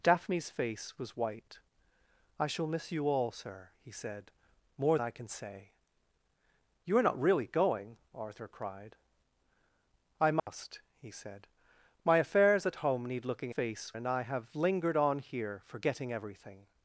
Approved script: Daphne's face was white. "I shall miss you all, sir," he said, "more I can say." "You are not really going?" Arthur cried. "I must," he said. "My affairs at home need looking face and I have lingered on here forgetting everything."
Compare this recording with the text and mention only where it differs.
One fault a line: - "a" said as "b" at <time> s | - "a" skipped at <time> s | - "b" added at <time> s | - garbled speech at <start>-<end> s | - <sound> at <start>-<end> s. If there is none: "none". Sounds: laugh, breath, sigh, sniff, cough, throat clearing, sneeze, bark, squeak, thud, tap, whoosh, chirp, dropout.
- dropout at 10.4-10.5 s